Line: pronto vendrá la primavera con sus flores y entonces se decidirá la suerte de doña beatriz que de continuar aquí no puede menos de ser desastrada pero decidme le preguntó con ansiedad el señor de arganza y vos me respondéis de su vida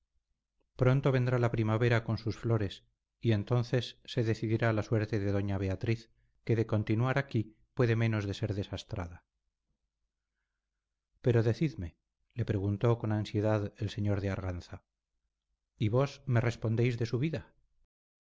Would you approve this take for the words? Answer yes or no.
no